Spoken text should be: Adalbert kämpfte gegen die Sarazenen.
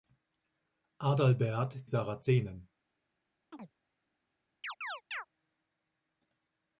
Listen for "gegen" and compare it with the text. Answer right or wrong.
wrong